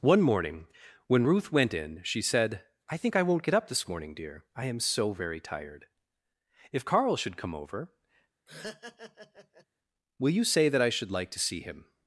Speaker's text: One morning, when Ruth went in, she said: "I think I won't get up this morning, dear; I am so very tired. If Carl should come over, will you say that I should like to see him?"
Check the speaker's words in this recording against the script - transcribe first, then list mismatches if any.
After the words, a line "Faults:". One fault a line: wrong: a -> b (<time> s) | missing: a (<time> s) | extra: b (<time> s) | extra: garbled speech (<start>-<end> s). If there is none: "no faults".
One morning, when Ruth went in, she said: "I think I won't get up this morning, dear; I am so very tired. If Carl should come over, will you say that I should like to see him?"
Faults:
no faults